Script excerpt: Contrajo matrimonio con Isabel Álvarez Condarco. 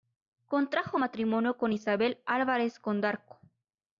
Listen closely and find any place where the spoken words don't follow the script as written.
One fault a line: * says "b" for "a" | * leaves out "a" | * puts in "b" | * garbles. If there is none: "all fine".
all fine